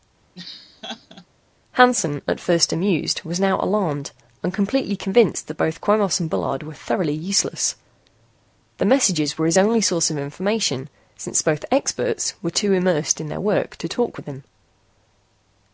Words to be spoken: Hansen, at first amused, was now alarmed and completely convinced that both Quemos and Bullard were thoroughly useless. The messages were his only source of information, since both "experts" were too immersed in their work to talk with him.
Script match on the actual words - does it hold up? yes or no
yes